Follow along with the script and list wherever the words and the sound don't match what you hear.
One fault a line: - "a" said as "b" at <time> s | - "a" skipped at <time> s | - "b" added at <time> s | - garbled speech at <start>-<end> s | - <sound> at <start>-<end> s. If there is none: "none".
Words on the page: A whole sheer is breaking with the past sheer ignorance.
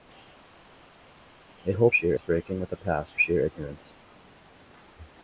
none